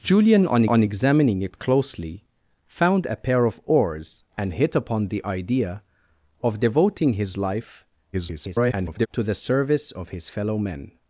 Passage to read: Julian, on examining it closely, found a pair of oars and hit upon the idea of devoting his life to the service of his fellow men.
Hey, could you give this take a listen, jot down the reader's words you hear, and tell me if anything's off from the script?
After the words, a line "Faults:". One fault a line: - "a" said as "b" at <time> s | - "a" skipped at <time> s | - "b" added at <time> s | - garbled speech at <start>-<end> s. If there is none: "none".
Julian, on on examining it closely, found a pair of oars and hit upon the idea of devoting his life [garbled] to the service of his fellow men.
Faults:
- "on" added at 0.7 s
- garbled speech at 8.1-9.1 s